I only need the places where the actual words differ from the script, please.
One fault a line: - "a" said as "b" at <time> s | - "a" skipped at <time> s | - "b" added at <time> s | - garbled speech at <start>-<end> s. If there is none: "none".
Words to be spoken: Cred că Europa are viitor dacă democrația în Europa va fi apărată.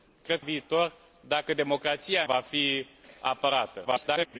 - "că Europa are" skipped at 0.4 s
- "în Europa" skipped at 2.2 s
- garbled speech at 3.8-4.4 s